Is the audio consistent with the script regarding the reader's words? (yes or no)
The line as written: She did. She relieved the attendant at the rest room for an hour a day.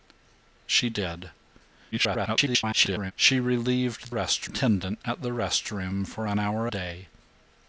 no